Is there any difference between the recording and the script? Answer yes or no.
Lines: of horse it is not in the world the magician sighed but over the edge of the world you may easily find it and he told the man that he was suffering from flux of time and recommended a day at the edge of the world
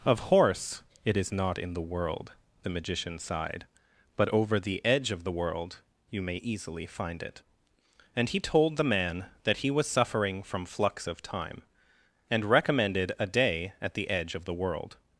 no